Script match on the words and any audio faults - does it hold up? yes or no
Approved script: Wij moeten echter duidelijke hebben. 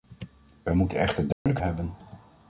no